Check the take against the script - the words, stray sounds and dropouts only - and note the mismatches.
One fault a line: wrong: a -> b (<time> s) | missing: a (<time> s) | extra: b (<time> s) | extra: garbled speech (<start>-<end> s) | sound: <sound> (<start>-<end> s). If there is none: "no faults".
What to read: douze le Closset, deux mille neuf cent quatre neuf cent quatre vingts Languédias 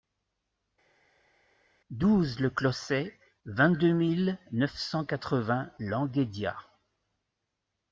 extra: vingt (3.4 s)
missing: neuf cent quatre (5.4 s)